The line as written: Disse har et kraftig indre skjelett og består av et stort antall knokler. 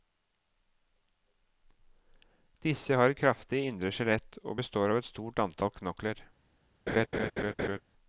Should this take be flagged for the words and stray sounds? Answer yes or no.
yes